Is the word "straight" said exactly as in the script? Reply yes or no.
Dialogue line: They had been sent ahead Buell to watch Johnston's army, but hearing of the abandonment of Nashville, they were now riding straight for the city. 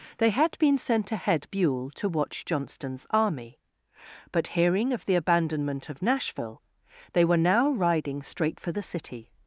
yes